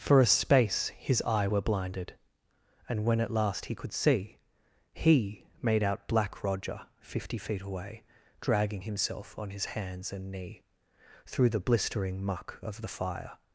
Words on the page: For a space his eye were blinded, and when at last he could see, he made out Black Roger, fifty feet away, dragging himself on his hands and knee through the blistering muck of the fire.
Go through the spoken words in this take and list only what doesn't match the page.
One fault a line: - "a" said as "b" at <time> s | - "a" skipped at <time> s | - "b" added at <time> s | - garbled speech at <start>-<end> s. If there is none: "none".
none